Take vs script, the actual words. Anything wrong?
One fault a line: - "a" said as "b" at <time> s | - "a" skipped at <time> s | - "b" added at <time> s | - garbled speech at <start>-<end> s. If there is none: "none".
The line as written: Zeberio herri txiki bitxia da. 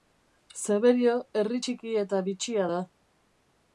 - "eta" added at 2.0 s